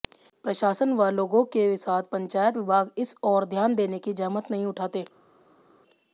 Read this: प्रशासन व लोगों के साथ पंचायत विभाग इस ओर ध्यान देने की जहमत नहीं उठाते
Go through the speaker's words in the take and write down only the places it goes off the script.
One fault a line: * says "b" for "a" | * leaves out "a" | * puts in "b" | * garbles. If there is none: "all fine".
all fine